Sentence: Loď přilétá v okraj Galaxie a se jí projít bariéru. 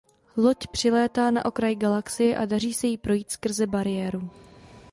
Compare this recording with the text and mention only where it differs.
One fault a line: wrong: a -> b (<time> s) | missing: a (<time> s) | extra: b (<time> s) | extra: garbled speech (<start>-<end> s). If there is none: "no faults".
wrong: v -> na (1.3 s)
extra: daří (2.5 s)
extra: skrze (3.3 s)